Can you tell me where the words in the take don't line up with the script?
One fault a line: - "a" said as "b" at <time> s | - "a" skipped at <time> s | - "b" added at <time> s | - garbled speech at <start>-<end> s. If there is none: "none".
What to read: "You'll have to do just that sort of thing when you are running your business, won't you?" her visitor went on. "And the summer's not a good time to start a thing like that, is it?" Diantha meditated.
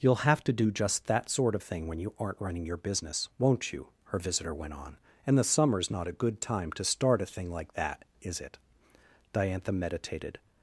- "are" said as "aren't" at 2.2 s